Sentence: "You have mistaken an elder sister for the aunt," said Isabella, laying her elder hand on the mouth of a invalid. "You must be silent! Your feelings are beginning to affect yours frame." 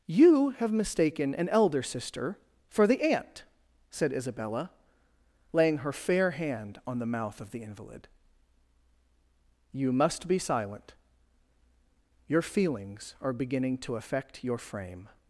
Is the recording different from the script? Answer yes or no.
yes